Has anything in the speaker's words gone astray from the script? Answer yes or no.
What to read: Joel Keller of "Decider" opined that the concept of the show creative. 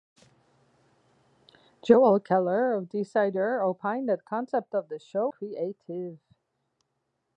no